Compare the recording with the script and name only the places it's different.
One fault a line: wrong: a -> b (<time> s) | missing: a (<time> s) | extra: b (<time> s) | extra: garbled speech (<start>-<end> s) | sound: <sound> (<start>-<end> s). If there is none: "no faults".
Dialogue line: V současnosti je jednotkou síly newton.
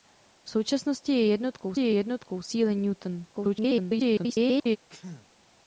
extra: je jednotkou (1.8 s)
extra: garbled speech (3.3-4.8 s)
sound: sneeze (4.9-5.3 s)